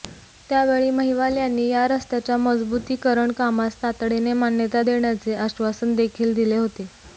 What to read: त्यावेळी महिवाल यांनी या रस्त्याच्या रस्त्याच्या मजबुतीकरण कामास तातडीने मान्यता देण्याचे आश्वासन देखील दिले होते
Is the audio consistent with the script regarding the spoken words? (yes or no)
no